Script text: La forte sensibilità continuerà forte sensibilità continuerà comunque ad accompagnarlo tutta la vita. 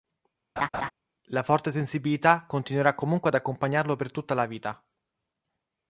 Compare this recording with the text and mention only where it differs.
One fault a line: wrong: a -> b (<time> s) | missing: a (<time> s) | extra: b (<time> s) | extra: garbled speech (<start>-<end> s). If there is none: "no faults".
missing: forte sensibilità continuerà (2.9 s)
extra: per (4.0 s)